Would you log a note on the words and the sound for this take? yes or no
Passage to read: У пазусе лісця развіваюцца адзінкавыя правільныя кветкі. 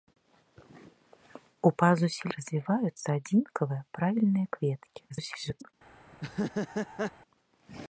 yes